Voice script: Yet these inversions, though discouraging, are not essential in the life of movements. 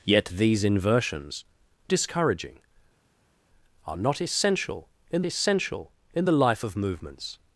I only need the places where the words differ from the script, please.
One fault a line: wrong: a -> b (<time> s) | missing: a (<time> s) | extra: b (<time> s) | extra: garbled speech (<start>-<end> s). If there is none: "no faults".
missing: though (1.4 s)
extra: essential in (5.2 s)